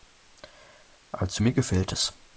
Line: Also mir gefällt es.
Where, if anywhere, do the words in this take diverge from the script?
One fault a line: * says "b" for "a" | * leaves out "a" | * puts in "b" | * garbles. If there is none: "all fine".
all fine